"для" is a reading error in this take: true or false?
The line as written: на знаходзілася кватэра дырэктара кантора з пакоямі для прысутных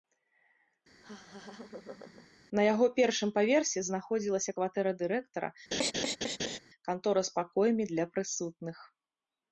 false